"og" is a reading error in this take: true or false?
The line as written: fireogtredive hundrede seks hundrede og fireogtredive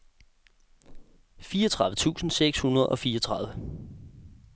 false